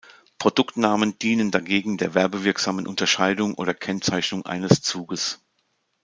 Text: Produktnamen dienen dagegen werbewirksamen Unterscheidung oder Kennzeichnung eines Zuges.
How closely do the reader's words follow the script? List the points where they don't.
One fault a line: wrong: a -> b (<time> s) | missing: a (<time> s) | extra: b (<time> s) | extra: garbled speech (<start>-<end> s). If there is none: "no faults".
extra: der (2.0 s)